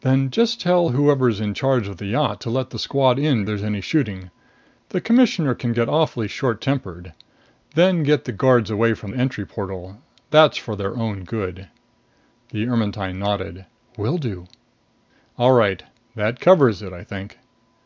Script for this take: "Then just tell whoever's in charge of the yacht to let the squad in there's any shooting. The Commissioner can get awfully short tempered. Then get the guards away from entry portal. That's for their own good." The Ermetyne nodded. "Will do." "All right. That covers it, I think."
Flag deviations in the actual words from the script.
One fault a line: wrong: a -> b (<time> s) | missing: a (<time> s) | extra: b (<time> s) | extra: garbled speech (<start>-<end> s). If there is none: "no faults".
no faults